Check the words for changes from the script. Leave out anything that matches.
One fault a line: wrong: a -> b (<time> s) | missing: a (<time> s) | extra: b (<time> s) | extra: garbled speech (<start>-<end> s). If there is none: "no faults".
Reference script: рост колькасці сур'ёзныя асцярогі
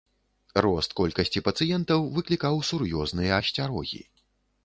extra: пацыентаў выклікаў (1.5 s)